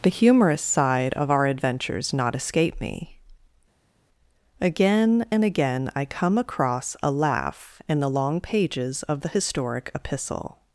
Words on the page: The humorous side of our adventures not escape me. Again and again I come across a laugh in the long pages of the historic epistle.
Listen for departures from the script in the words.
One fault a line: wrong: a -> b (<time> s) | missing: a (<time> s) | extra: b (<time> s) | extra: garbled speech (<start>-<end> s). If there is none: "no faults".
no faults